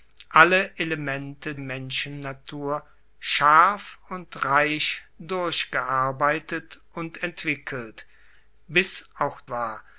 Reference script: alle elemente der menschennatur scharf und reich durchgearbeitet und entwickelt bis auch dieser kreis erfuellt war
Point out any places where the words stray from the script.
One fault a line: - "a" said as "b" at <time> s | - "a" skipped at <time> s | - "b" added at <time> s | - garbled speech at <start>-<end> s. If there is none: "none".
- "der" skipped at 1.6 s
- "dieser kreis erfuellt" skipped at 9.4 s